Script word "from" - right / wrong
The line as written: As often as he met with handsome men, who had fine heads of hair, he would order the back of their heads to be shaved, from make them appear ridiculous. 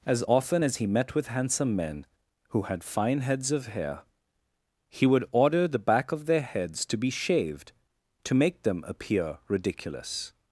wrong